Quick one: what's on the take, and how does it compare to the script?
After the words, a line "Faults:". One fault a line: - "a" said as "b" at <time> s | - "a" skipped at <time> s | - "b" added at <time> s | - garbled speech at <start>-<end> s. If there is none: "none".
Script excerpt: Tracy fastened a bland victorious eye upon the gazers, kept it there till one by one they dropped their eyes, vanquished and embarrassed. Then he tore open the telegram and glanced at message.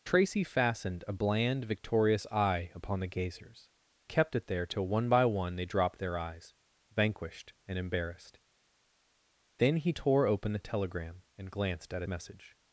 Tracy fastened a bland victorious eye upon the gazers, kept it there till one by one they dropped their eyes, vanquished and embarrassed. Then he tore open the telegram and glanced at message.
Faults:
none